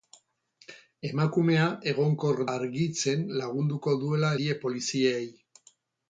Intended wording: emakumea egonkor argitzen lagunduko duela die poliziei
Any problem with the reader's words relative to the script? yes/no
no